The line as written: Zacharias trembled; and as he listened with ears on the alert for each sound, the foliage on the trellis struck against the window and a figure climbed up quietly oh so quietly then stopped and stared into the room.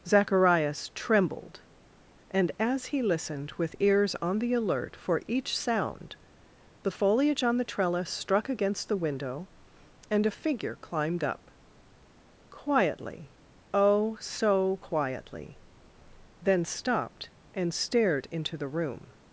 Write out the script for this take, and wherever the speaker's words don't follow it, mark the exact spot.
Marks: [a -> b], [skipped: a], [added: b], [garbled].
Zacharias trembled; and as he listened with ears on the alert for each sound, the foliage on the trellis struck against the window and a figure climbed up quietly oh so quietly then stopped and stared into the room.